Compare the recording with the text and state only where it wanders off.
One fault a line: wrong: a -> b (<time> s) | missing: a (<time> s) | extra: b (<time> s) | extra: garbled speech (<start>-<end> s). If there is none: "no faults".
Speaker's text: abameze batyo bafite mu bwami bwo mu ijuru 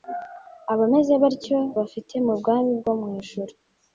no faults